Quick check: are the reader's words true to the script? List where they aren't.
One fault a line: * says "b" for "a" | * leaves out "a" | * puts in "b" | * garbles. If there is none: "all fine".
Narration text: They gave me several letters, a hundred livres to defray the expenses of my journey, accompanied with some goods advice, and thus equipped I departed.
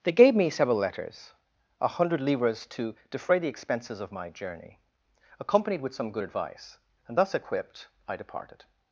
* says "good" for "goods"